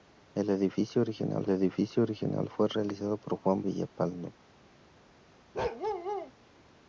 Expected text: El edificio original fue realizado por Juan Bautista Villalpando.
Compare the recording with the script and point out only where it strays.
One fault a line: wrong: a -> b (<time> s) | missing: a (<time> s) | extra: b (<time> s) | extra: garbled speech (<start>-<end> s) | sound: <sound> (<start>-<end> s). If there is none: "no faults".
extra: edificio original (1.5 s)
missing: Bautista (3.6 s)
sound: bark (5.5-6.3 s)